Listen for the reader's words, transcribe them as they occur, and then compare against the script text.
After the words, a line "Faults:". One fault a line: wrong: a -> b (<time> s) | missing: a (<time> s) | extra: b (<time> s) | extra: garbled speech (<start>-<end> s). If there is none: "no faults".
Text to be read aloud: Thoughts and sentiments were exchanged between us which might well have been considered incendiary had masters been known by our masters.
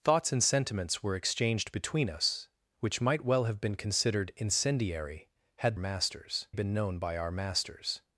Thoughts and sentiments were exchanged between us which might well have been considered incendiary had masters been known by our masters.
Faults:
no faults